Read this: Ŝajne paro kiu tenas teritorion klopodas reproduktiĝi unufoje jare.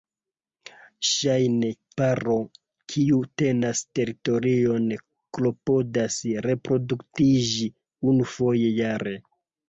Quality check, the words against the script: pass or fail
pass